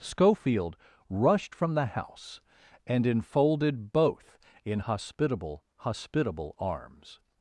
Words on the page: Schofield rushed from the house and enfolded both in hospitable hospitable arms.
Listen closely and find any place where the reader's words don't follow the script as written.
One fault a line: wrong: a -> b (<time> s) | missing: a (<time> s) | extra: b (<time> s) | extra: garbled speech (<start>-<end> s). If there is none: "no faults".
no faults